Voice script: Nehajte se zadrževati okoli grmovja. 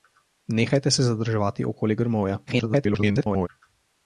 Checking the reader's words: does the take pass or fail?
fail